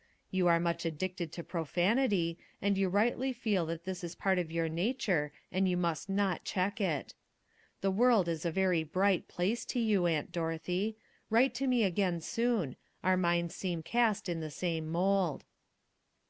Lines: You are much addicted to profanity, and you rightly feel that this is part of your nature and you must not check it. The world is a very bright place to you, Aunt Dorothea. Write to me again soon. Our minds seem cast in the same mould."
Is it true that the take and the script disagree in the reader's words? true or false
false